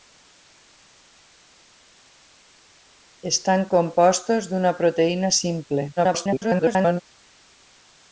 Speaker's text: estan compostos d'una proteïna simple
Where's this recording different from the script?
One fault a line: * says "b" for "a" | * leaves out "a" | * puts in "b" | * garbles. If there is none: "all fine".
* garbles